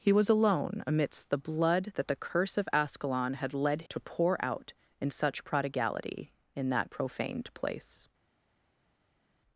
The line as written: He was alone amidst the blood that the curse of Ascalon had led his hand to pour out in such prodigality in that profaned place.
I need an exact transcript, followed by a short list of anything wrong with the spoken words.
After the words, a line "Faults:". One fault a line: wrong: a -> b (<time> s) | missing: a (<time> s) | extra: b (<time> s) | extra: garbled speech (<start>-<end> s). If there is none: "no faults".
He was alone amidst the blood that the curse of Ascalon had led to pour out in such prodigality in that profaned place.
Faults:
missing: his hand (3.8 s)